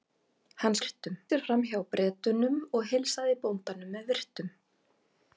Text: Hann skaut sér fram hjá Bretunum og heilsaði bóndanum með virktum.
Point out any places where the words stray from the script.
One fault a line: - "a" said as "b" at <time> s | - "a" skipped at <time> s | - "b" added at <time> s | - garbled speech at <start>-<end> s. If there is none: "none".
- "skaut" said as "virktum" at 0.8 s